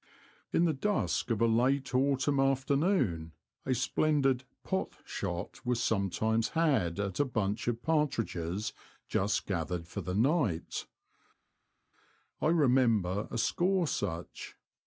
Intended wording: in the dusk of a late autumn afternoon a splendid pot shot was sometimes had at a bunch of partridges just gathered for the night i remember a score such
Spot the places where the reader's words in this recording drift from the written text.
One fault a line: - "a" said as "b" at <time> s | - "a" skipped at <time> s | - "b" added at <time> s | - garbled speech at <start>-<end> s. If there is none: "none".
none